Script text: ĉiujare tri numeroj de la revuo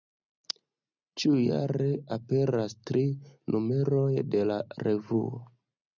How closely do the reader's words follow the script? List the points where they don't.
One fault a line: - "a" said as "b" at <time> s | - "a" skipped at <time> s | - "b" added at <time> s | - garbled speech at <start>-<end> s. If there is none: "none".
- "aperas" added at 2.2 s